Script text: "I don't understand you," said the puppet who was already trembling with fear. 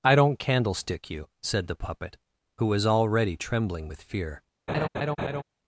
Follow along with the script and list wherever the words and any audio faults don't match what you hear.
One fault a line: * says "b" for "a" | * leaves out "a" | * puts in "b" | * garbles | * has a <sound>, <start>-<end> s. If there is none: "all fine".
* says "candlestick" for "understand"
* has a laugh, 4.7-5.4 s